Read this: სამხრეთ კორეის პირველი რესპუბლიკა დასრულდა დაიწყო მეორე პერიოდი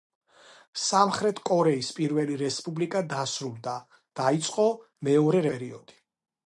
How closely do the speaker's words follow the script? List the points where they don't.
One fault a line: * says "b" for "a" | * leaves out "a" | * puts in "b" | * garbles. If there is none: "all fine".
all fine